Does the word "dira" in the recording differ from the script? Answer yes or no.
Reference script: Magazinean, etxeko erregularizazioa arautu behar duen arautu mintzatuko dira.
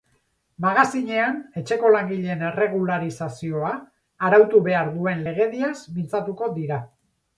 no